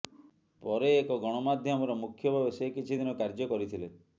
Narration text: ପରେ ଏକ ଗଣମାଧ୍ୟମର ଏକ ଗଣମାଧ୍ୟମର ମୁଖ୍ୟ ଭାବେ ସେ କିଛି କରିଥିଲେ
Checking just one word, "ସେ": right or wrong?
right